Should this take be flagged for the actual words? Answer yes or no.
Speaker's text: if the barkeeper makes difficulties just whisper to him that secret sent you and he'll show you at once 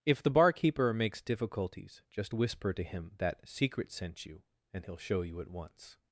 no